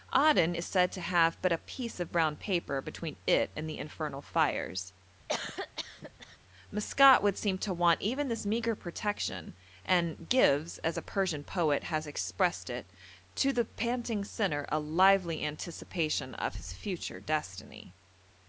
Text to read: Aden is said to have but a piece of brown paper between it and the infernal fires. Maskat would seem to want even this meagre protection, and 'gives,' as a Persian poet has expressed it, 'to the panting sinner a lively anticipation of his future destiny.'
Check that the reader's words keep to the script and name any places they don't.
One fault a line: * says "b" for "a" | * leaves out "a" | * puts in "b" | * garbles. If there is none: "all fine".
all fine